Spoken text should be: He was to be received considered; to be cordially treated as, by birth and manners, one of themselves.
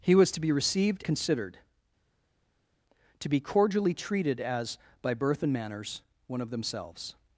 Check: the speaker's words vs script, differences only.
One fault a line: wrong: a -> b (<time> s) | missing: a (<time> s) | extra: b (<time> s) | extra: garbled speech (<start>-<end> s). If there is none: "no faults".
no faults